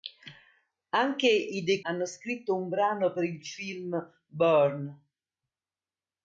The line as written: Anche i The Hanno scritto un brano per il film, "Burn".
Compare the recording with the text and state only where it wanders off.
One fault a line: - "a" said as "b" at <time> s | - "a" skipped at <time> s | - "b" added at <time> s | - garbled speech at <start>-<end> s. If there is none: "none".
none